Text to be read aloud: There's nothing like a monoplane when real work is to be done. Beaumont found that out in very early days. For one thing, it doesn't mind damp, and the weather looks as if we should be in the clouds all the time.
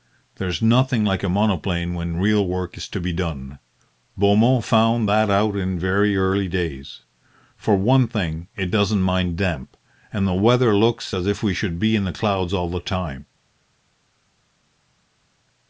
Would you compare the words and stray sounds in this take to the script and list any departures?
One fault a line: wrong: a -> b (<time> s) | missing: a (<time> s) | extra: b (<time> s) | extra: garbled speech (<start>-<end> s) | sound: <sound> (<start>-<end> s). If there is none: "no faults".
no faults